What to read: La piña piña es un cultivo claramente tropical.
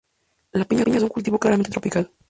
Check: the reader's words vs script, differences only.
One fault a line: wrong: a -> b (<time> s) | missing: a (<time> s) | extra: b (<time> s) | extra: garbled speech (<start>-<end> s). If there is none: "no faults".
no faults